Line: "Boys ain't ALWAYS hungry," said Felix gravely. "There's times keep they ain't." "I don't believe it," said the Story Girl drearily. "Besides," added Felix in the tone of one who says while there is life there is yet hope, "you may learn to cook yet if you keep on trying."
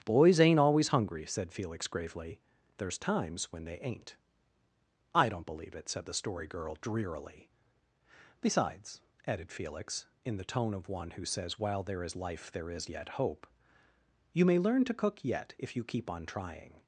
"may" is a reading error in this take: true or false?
false